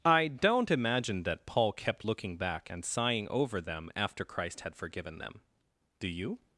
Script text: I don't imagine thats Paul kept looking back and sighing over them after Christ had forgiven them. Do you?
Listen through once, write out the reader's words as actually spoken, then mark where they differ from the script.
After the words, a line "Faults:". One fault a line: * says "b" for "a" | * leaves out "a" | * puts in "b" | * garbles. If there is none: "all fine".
I don't imagine that Paul kept looking back and sighing over them after Christ had forgiven them. Do you?
Faults:
* says "that" for "thats"